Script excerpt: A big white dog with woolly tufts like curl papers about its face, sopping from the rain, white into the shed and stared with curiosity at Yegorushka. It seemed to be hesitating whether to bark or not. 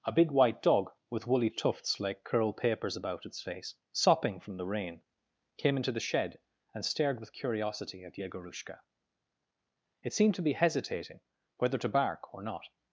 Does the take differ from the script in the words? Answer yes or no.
yes